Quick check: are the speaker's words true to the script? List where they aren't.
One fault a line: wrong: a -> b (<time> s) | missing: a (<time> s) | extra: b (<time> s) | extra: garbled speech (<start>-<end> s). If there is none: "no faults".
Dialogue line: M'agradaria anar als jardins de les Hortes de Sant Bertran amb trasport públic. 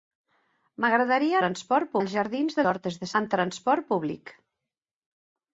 wrong: anar -> trasport (1.4 s)
missing: les (2.7 s)
missing: Sant Bertran (3.1 s)